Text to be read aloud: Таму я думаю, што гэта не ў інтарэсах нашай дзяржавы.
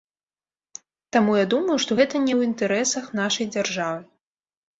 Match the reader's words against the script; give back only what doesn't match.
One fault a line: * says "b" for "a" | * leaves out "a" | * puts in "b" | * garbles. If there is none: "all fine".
all fine